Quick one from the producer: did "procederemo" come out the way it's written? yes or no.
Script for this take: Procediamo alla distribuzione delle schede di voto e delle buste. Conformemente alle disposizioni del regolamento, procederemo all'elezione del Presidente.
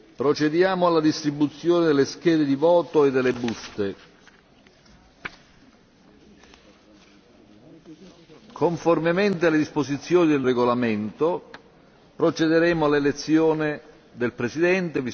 yes